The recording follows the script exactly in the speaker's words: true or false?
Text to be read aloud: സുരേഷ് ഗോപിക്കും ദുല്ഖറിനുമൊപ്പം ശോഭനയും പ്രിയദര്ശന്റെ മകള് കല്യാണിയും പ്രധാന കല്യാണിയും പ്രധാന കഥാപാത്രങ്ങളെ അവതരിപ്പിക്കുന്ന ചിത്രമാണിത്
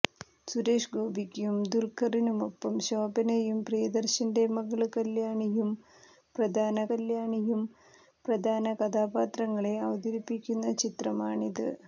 true